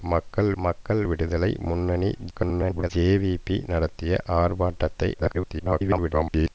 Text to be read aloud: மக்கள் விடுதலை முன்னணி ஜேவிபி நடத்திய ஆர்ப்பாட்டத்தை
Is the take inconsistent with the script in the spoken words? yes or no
yes